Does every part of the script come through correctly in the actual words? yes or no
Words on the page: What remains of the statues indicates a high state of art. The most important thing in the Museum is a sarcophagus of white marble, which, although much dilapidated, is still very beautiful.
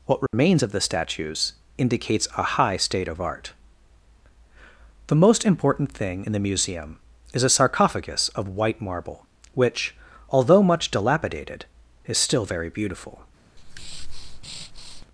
yes